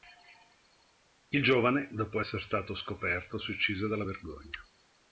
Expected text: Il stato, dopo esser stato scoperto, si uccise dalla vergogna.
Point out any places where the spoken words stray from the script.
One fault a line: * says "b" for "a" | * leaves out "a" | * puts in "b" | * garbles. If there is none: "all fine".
* says "giovane" for "stato"